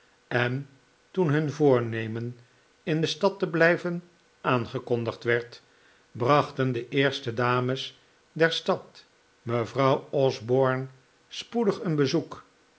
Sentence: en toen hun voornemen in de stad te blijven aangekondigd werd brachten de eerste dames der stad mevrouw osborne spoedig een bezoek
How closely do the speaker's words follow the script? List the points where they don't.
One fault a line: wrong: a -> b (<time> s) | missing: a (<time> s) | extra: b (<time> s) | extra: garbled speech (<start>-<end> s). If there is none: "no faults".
no faults